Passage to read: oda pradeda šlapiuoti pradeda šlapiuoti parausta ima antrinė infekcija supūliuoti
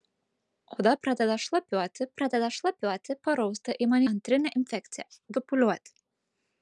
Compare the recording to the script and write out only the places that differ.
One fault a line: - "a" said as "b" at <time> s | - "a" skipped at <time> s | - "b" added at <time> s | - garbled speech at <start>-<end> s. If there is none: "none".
none